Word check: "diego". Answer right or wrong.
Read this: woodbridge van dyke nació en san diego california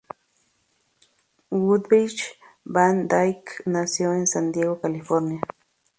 right